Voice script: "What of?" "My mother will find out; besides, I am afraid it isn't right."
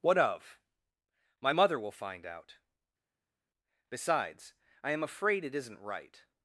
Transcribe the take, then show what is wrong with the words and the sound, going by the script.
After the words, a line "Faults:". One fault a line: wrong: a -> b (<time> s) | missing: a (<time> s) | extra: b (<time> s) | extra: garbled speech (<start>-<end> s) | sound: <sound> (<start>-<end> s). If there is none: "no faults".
"What of?" "My mother will find out; besides, I am afraid it isn't right."
Faults:
no faults